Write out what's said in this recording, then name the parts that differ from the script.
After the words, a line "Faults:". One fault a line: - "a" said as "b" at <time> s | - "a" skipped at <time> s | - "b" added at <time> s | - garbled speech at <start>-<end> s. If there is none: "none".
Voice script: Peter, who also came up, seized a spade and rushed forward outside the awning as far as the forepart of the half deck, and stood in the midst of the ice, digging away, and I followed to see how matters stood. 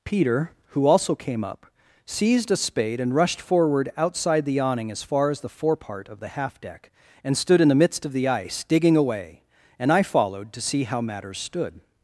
Peter, who also came up, seized a spade and rushed forward outside the awning as far as the forepart of the half deck, and stood in the midst of the ice, digging away, and I followed to see how matters stood.
Faults:
none